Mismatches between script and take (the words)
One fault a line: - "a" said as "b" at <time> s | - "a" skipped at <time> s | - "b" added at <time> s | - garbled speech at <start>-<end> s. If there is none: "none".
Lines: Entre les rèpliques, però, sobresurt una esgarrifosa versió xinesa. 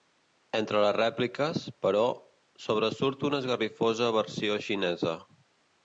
none